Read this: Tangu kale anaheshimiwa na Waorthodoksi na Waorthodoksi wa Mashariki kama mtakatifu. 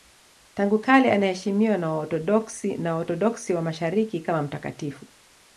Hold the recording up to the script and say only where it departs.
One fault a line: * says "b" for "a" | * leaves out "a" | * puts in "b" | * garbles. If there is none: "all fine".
all fine